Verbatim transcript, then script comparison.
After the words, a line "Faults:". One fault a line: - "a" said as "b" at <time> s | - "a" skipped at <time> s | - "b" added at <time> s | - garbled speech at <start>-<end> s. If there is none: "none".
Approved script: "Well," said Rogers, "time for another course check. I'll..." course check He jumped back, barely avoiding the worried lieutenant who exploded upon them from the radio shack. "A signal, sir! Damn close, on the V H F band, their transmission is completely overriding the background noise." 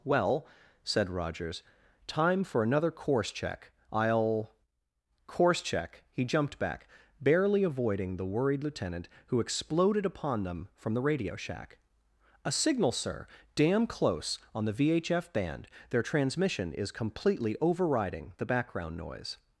"Well," said Rogers, "time for another course check. I'll..." course check He jumped back, barely avoiding the worried lieutenant who exploded upon them from the radio shack. "A signal, sir! Damn close, on the V H F band, their transmission is completely overriding the background noise."
Faults:
none